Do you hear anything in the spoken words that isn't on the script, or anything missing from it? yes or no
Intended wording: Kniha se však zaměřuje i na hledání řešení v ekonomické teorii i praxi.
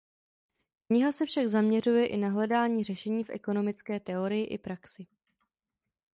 no